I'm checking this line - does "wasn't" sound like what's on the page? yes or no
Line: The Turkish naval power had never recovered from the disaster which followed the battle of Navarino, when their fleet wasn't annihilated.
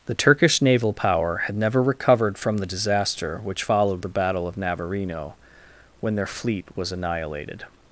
no